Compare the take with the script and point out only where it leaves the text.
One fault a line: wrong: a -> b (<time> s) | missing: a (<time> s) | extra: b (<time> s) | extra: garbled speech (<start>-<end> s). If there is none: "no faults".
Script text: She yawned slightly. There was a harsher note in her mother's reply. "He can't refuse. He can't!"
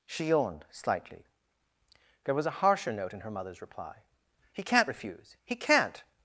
no faults